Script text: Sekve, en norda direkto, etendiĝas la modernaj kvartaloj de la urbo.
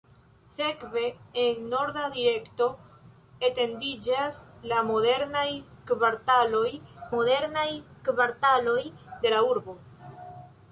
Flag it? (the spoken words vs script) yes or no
yes